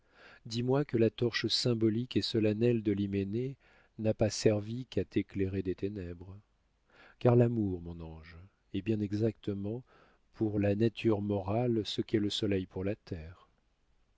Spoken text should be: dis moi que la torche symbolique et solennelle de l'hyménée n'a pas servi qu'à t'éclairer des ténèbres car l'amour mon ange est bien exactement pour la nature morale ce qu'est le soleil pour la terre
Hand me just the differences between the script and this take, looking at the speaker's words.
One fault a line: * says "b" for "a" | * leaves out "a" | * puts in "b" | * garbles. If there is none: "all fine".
all fine